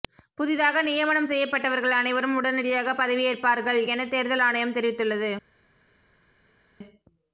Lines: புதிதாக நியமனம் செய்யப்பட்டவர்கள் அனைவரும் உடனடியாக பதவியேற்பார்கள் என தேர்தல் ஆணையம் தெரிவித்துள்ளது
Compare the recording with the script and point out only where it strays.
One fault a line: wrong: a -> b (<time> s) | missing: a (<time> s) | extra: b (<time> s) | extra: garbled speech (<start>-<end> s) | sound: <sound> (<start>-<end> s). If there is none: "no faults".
no faults